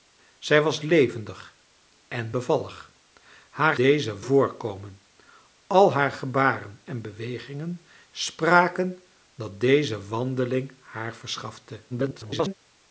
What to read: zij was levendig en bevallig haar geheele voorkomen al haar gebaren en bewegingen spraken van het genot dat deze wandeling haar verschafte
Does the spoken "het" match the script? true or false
false